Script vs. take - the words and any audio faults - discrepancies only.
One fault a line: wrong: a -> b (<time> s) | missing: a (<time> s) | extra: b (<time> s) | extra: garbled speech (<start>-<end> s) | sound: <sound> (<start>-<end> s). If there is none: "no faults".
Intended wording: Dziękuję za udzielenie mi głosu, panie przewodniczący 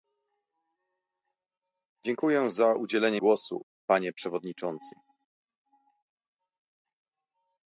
missing: mi (3.2 s)